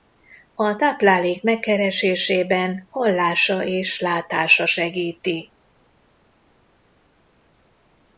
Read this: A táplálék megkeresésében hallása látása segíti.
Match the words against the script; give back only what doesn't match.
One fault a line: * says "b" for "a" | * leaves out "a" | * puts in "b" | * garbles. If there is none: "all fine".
* puts in "és"